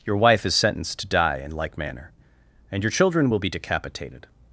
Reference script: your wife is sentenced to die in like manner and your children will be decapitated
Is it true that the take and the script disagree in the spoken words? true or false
false